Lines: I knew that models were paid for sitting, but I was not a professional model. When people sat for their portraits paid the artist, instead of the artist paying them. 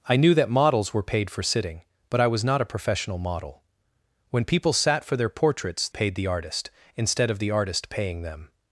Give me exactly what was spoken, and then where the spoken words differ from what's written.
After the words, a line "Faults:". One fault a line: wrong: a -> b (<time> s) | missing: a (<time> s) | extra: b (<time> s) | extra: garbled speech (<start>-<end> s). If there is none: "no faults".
I knew that models were paid for sitting, but I was not a professional model. When people sat for their portraits paid the artist, instead of the artist paying them.
Faults:
no faults